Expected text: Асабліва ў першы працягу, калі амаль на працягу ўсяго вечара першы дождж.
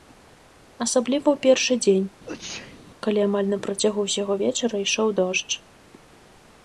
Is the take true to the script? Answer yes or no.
no